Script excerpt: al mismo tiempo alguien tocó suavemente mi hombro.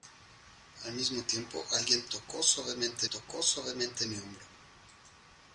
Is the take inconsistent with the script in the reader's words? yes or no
yes